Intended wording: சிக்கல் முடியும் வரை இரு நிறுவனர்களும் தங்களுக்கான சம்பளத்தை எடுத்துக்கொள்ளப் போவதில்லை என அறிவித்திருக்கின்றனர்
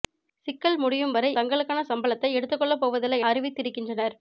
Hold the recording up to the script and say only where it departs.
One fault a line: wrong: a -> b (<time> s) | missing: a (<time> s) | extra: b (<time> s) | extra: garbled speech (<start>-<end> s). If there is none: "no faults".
missing: இரு நிறுவனர்களும் (1.3 s)
missing: என (3.2 s)